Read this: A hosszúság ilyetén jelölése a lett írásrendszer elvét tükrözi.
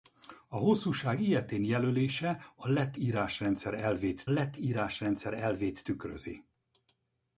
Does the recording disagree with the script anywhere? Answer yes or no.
yes